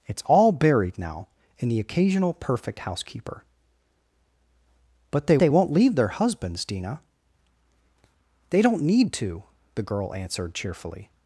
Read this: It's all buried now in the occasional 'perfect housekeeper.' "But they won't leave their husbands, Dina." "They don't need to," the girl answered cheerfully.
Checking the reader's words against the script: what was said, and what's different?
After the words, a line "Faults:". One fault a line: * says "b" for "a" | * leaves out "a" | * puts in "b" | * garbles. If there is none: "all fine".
It's all buried now in the occasional 'perfect housekeeper.' "But they they won't leave their husbands, Dina." "They don't need to," the girl answered cheerfully.
Faults:
* puts in "they"